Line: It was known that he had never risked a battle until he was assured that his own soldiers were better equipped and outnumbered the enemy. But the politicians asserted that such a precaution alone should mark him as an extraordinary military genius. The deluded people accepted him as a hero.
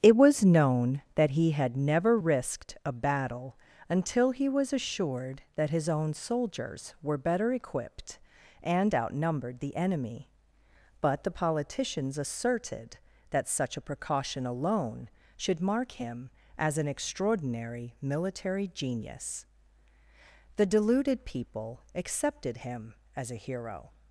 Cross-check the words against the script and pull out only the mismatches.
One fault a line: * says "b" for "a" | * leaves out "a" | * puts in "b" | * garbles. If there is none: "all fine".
all fine